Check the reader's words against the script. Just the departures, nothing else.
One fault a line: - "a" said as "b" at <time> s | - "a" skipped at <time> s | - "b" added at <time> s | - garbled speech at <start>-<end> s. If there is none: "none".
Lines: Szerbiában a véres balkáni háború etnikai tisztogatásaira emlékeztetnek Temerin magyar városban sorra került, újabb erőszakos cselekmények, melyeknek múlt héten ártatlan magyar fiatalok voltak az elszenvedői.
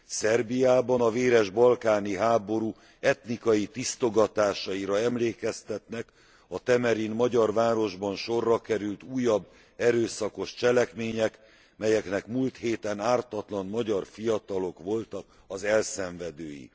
- "a" added at 6.5 s